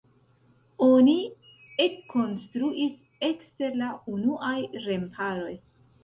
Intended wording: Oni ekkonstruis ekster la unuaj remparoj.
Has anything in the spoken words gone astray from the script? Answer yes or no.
no